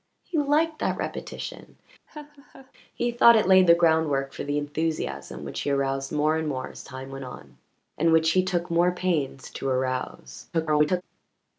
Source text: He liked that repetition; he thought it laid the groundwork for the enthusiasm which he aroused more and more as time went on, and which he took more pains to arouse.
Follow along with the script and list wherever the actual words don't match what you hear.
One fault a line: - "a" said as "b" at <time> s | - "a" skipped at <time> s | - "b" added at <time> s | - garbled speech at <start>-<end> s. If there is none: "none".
- garbled speech at 10.5-11.0 s